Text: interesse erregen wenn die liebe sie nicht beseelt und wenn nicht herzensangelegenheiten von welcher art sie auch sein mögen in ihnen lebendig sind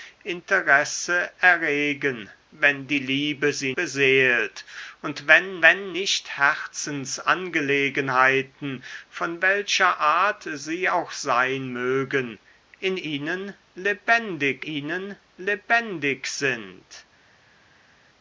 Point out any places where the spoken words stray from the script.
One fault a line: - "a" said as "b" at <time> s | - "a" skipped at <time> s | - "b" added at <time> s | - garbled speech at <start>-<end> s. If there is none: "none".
- "nicht" skipped at 3.8 s
- "wenn" added at 5.6 s
- "ihnen lebendig" added at 14.6 s